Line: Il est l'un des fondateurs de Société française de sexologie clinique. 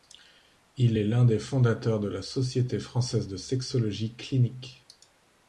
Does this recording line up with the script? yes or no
no